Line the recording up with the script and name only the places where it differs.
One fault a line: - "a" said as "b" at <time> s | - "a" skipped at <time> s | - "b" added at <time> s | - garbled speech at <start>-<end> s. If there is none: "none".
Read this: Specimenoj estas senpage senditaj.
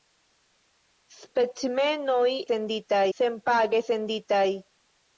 - "estas" said as "senditaj" at 2.5 s